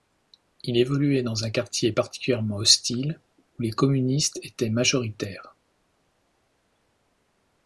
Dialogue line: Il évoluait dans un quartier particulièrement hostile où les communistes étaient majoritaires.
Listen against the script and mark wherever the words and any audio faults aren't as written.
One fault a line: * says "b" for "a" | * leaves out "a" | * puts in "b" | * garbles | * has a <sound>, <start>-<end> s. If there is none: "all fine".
all fine